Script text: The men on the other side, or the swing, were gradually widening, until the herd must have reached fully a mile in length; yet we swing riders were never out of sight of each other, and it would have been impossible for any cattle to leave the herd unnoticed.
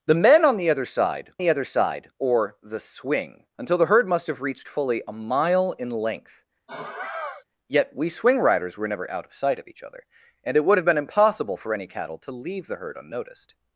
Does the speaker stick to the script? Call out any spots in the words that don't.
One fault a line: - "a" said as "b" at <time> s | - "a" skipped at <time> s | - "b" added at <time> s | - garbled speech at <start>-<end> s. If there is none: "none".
- "the other side" added at 1.4 s
- "were gradually widening" skipped at 3.5 s